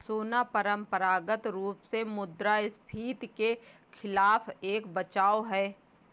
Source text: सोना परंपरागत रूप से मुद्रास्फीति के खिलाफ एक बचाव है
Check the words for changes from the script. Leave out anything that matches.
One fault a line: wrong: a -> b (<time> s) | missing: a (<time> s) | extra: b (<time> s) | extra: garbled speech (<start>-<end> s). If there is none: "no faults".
no faults